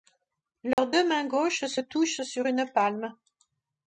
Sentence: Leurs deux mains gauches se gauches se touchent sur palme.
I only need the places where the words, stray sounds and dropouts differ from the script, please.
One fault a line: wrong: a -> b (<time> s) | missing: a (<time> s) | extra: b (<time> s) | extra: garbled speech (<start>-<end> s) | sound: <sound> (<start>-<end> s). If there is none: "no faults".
sound: dropout (0.7-0.8 s)
missing: gauches se (1.8 s)
extra: une (2.5 s)